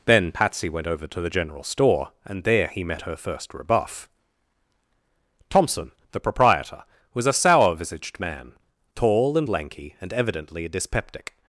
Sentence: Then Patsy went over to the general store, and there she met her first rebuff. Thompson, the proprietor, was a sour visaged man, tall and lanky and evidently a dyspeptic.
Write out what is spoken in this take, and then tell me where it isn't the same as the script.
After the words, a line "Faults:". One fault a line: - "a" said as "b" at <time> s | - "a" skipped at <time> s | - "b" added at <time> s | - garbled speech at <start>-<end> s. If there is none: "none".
Then Patsy went over to the general store, and there he met her first rebuff. Thompson, the proprietor, was a sour visaged man, tall and lanky and evidently a dyspeptic.
Faults:
- "she" said as "he" at 2.7 s